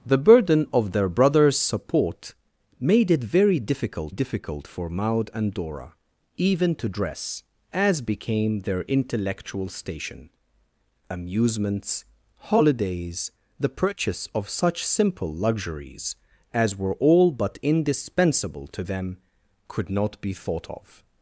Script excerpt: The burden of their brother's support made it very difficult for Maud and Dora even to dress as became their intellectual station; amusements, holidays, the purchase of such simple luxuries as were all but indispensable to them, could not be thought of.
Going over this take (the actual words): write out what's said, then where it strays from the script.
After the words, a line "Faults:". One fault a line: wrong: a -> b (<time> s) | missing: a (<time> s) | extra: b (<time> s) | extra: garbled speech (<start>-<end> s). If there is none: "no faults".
The burden of their brother's support made it very difficult difficult for Maud and Dora even to dress as became their intellectual station; amusements, holidays, the purchase of such simple luxuries as were all but indispensable to them, could not be thought of.
Faults:
extra: difficult (4.1 s)